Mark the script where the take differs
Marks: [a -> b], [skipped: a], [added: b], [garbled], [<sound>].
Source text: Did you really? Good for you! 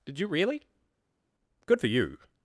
Did you really? Good for you!